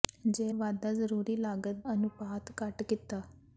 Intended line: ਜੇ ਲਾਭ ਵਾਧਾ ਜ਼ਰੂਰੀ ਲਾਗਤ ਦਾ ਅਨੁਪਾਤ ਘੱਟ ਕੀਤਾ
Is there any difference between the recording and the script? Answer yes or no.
yes